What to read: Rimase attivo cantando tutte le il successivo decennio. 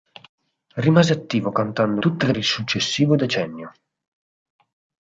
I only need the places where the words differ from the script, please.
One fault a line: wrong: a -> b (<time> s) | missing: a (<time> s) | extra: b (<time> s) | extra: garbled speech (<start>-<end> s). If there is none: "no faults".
no faults